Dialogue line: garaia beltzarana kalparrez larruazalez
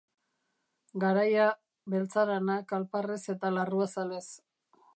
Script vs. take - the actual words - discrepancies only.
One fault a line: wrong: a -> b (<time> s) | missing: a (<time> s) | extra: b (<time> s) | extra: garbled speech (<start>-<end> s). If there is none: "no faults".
extra: eta (3.3 s)